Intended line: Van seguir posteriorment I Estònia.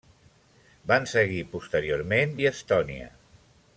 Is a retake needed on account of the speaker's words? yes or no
no